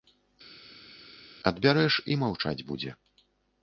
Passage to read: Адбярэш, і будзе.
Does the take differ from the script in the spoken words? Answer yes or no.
yes